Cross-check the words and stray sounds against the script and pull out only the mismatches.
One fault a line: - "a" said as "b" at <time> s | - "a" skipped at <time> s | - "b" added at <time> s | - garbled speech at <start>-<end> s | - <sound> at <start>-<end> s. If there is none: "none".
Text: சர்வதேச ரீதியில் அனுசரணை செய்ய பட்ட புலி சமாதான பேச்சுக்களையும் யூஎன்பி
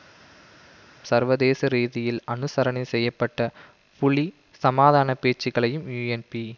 none